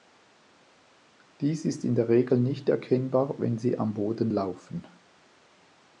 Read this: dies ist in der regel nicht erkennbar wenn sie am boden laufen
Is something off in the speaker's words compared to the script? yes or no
no